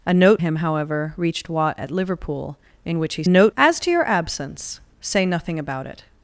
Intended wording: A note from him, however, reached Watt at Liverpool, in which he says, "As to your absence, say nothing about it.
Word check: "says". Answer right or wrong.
wrong